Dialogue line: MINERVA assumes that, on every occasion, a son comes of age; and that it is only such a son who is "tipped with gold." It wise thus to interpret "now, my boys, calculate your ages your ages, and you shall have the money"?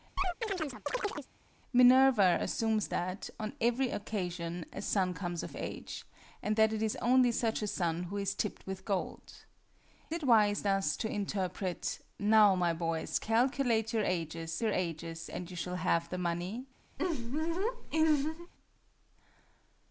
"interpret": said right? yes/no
yes